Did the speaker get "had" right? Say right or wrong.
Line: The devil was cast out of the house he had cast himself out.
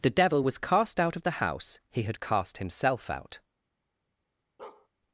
right